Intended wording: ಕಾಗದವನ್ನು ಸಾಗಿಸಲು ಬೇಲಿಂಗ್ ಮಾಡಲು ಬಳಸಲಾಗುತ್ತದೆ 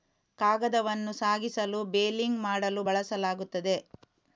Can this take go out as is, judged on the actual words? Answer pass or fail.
pass